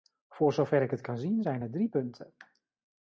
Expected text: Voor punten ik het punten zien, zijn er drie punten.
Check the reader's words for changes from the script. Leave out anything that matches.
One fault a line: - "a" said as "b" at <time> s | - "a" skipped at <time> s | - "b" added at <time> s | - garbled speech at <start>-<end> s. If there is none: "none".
- "punten" said as "zover" at 0.5 s
- "punten" said as "kan" at 1.0 s